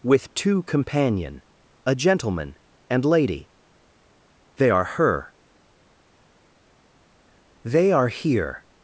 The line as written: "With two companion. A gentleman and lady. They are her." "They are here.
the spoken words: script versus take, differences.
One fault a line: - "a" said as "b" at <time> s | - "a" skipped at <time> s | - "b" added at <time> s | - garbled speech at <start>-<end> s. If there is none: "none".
none